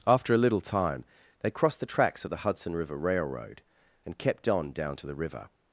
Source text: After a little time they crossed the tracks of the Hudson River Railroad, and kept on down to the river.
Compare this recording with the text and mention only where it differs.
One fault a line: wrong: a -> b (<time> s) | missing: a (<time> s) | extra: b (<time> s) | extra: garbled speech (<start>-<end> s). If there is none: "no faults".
no faults